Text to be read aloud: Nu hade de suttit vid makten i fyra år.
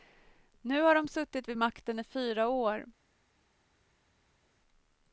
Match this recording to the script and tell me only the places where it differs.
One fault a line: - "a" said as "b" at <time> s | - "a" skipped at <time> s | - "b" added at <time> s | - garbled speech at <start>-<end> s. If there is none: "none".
- "hade" said as "har" at 0.8 s